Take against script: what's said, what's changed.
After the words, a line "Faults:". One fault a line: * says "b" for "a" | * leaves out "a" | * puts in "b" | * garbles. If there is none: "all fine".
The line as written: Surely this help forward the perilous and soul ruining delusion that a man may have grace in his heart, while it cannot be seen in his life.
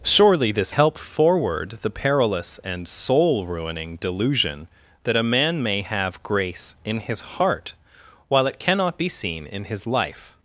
Surely this help forward the perilous and soul ruining delusion that a man may have grace in his heart, while it cannot be seen in his life.
Faults:
all fine